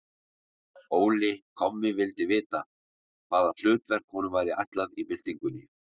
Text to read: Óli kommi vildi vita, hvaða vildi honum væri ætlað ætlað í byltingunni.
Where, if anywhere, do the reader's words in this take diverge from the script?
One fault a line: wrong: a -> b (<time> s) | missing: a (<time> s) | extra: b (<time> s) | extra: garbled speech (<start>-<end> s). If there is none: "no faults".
wrong: vildi -> hlutverk (3.6 s)
missing: ætlað (5.0 s)